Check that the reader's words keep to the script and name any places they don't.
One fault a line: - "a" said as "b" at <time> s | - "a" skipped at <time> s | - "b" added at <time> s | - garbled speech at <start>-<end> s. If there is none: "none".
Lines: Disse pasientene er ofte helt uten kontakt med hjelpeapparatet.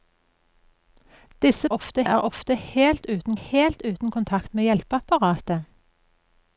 - "pasientene" said as "ofte" at 1.8 s
- "helt uten" added at 3.3 s